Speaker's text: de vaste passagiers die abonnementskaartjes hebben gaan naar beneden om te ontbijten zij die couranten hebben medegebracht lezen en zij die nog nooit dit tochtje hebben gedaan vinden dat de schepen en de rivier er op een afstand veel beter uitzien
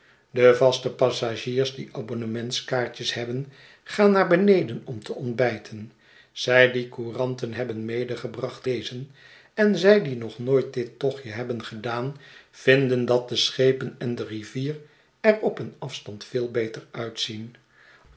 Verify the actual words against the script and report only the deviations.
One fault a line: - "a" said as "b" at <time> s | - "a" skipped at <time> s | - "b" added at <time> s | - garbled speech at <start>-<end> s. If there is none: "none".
none